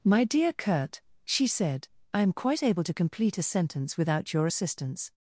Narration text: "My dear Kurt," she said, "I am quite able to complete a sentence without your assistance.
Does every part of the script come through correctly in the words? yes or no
yes